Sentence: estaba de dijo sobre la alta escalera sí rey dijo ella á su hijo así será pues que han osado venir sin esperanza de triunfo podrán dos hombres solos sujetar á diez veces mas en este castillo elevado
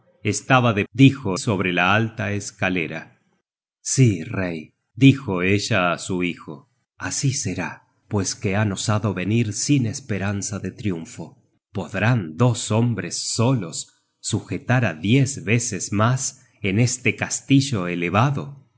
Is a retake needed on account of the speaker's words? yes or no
no